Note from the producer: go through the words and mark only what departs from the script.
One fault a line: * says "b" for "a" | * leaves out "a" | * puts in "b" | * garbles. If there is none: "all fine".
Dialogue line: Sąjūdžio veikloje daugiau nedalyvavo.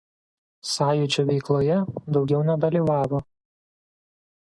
all fine